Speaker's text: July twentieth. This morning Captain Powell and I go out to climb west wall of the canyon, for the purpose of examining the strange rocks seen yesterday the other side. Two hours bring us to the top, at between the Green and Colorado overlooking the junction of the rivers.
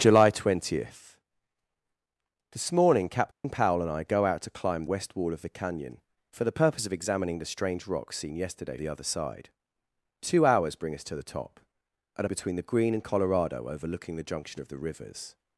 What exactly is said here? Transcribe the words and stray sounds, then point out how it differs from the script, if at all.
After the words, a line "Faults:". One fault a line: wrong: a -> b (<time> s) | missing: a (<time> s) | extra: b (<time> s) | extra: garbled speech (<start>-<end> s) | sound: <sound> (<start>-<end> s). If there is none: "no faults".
July twentieth. This morning Captain Powell and I go out to climb west wall of the canyon, for the purpose of examining the strange rocks seen yesterday the other side. Two hours bring us to the top, at between the Green and Colorado overlooking the junction of the rivers.
Faults:
sound: dropout (3.3-3.4 s)